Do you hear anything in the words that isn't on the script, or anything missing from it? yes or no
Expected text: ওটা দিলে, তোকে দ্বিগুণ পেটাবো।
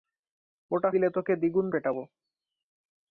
no